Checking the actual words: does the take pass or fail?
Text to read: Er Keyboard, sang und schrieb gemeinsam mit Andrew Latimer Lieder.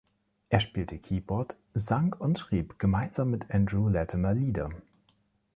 fail